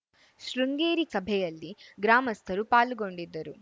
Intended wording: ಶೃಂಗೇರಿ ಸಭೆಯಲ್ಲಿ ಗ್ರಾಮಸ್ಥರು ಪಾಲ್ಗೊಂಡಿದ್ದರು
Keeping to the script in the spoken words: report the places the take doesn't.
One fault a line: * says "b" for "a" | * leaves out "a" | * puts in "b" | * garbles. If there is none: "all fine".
all fine